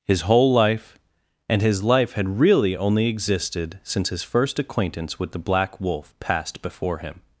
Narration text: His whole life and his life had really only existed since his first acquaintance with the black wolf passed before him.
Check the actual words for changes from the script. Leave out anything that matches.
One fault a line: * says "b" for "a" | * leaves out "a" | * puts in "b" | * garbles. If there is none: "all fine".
all fine